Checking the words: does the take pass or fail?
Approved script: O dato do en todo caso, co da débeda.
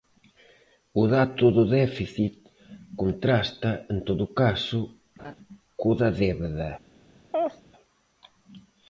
fail